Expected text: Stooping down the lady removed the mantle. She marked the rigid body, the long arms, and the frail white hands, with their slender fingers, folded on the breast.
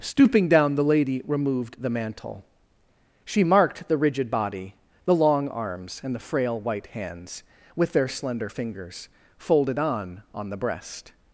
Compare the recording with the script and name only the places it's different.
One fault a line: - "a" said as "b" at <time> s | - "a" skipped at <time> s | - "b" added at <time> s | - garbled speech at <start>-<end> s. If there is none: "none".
- "on" added at 10.3 s